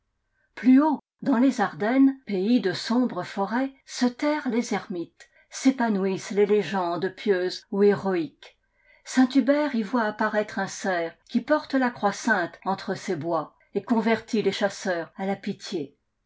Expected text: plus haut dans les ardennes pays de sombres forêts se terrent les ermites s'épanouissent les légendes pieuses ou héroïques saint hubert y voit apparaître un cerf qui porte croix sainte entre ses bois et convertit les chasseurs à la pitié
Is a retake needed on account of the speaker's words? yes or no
yes